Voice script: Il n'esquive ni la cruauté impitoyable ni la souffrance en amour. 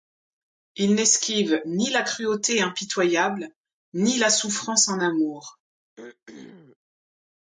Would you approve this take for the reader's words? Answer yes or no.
yes